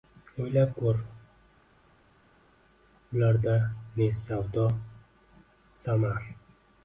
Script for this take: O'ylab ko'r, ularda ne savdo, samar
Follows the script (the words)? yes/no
yes